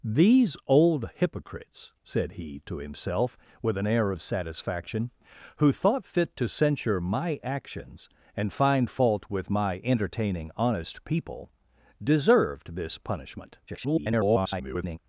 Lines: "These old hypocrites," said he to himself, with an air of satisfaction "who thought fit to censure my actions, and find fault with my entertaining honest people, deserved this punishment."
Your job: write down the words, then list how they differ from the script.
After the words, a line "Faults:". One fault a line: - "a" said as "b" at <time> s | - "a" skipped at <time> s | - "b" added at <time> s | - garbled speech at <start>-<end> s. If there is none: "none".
"These old hypocrites," said he to himself, with an air of satisfaction "who thought fit to censure my actions, and find fault with my entertaining honest people, deserved this punishment." [garbled]
Faults:
- garbled speech at 13.7-15.0 s